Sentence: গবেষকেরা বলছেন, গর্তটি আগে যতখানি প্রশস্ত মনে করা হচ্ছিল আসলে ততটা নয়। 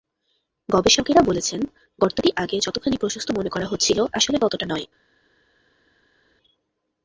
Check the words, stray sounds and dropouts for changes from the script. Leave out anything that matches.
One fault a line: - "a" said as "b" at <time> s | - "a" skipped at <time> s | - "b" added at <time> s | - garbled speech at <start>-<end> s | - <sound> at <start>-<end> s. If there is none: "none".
none